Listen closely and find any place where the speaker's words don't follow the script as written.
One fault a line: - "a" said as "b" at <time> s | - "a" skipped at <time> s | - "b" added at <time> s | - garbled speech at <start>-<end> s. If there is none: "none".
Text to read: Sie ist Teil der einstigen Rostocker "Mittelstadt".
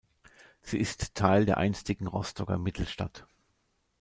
none